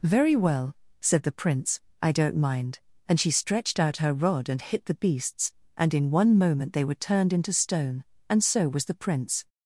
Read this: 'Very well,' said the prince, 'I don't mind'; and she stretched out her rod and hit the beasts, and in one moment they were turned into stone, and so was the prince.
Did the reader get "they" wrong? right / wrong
right